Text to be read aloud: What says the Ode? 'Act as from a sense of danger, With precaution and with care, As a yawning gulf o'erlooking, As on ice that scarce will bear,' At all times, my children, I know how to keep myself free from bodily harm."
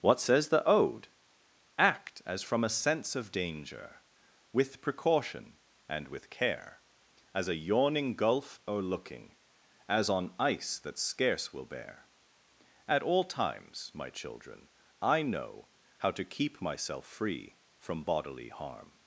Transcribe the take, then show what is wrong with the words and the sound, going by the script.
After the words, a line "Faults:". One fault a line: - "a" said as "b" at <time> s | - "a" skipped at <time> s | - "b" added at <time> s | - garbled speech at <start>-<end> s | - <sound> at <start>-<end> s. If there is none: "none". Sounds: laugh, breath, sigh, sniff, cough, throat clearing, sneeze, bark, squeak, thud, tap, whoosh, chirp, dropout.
What says the Ode? 'Act as from a sense of danger, With precaution and with care, As a yawning gulf o'erlooking, As on ice that scarce will bear,' At all times, my children, I know how to keep myself free from bodily harm."
Faults:
none